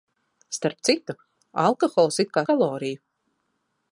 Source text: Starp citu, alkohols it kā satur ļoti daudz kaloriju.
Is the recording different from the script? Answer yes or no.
yes